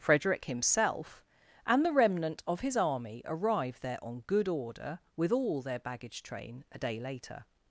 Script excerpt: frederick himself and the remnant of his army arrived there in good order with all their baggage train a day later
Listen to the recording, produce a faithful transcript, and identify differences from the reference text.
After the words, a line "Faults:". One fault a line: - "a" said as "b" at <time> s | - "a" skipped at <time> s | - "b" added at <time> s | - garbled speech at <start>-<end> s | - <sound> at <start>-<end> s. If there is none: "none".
frederick himself and the remnant of his army arrived there on good order with all their baggage train a day later
Faults:
- "in" said as "on" at 4.0 s